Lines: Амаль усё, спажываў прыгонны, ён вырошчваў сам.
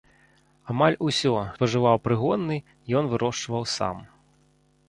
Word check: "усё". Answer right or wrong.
right